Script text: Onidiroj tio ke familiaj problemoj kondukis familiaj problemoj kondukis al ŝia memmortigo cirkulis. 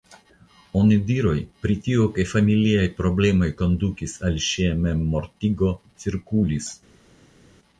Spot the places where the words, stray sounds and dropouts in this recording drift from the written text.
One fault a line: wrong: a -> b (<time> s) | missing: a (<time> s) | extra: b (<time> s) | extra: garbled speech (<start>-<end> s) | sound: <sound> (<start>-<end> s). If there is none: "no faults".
extra: pri (1.6 s)
missing: familiaj problemoj kondukis (4.2 s)